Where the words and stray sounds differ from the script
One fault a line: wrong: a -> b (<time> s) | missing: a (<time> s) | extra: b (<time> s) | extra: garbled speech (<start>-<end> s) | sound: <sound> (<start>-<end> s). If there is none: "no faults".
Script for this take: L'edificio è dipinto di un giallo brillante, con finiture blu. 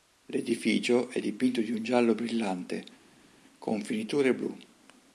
no faults